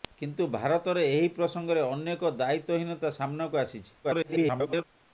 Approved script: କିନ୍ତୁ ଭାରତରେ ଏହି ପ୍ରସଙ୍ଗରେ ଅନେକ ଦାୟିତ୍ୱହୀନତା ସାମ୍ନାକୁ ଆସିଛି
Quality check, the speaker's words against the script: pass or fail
fail